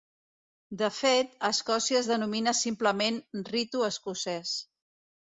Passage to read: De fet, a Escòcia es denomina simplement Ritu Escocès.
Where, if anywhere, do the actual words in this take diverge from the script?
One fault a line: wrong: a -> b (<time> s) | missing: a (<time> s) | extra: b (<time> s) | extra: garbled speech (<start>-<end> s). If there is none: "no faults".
no faults